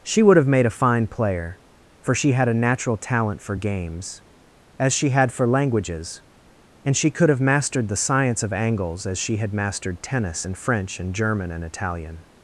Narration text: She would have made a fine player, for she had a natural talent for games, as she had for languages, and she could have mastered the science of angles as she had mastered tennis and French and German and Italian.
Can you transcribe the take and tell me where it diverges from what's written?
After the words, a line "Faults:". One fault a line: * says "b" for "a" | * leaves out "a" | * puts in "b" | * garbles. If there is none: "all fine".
She would have made a fine player, for she had a natural talent for games, as she had for languages, and she could have mastered the science of angles as she had mastered tennis and French and German and Italian.
Faults:
all fine